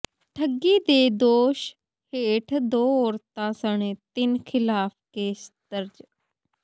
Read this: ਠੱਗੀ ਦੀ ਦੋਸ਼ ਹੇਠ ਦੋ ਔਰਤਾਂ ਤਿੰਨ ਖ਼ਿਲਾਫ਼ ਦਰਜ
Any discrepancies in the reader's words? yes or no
yes